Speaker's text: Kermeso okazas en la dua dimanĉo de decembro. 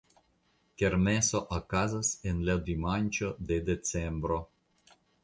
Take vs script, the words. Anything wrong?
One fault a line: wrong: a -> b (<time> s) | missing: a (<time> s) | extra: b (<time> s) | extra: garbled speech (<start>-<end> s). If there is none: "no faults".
missing: dua (2.6 s)